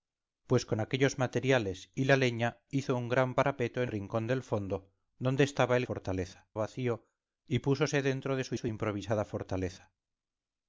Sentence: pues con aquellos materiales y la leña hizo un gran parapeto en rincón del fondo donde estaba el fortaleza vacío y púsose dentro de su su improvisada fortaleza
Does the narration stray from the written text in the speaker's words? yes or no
no